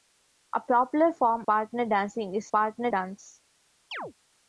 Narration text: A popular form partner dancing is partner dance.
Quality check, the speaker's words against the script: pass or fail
pass